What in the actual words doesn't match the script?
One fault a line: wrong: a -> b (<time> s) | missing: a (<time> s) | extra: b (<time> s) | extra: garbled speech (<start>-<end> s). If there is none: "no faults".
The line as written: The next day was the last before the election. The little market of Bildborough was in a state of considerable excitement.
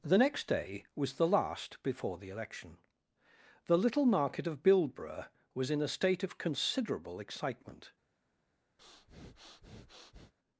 no faults